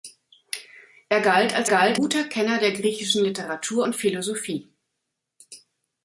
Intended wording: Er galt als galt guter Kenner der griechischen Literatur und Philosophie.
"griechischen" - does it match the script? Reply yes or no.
yes